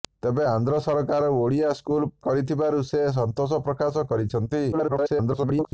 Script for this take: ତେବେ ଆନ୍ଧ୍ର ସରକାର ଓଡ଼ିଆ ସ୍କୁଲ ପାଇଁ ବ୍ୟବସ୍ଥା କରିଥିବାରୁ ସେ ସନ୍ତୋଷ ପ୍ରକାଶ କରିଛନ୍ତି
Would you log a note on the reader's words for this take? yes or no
yes